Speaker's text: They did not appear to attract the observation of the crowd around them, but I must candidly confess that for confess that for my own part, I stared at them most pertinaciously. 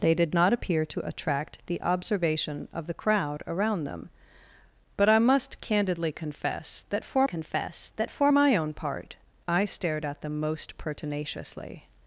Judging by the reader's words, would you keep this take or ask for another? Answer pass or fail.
pass